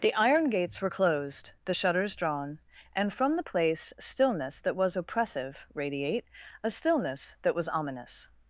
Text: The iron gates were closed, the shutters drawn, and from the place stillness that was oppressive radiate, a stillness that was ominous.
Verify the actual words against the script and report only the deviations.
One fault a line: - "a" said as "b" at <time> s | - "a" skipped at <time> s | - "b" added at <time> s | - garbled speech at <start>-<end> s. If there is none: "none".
none